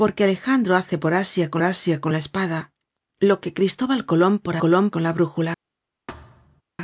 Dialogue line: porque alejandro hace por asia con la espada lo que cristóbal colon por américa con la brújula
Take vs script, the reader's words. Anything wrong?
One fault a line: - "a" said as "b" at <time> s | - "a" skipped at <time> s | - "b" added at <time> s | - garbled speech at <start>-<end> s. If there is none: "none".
- "asia con" added at 1.6 s
- "américa" said as "colon" at 4.6 s